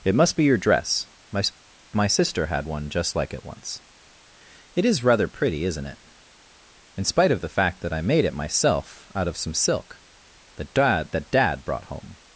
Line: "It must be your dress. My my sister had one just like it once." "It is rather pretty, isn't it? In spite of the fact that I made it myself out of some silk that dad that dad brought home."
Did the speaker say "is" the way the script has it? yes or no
yes